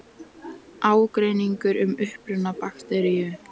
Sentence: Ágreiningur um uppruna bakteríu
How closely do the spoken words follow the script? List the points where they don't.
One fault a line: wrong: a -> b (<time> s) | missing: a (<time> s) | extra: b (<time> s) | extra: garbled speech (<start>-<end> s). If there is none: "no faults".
no faults